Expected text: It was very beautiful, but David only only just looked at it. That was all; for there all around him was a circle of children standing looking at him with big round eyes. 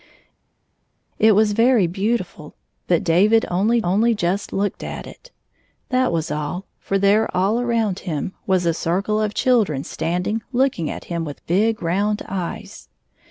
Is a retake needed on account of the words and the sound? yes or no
no